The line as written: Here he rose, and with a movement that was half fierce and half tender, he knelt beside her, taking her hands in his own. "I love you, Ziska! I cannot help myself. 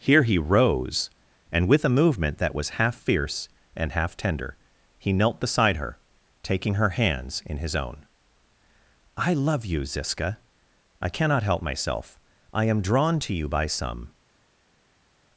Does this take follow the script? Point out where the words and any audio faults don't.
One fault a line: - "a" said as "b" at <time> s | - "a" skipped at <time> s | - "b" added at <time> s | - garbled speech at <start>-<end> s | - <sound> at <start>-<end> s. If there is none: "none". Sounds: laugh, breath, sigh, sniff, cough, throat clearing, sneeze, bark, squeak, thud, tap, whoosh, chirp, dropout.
- "I am drawn to you by some" added at 12.5 s